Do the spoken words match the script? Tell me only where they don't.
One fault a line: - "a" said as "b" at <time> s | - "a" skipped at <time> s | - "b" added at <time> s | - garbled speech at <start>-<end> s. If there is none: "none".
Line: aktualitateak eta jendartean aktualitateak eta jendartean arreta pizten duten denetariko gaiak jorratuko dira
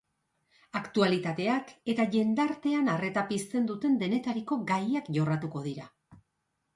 - "aktualitateak eta jendartean" skipped at 2.9 s